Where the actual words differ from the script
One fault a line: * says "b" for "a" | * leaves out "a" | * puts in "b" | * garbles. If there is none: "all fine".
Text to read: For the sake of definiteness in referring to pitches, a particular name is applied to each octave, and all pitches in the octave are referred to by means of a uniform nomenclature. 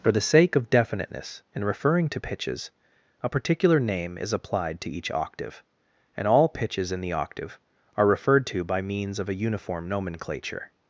all fine